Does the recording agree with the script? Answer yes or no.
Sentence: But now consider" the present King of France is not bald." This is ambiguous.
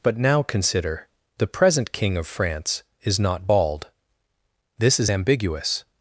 yes